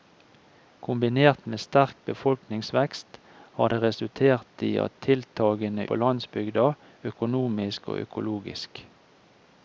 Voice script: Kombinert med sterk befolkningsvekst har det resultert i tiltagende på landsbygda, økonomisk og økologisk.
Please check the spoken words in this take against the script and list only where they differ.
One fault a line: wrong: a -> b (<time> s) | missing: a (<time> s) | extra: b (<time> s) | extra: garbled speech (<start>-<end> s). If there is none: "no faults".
no faults